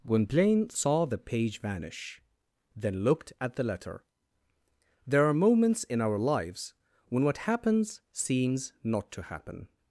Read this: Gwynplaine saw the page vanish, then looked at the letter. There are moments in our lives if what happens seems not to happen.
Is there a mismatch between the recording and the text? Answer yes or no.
yes